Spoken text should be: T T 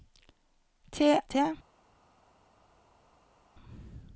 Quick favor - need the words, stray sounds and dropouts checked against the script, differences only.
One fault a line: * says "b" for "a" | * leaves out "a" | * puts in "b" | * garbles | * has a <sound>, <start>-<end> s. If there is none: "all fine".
all fine